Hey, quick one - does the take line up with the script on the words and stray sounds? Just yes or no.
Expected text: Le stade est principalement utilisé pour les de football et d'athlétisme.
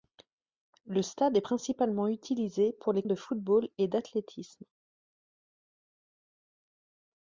yes